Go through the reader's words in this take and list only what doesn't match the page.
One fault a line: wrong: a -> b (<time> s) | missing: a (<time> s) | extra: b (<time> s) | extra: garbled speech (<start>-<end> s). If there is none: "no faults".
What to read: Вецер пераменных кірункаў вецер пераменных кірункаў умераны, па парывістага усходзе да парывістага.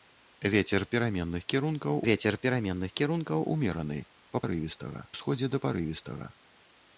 no faults